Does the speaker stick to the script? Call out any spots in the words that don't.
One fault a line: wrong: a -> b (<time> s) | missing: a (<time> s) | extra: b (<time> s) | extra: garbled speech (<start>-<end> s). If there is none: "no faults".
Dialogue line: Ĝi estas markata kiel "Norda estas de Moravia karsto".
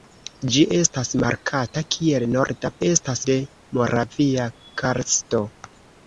no faults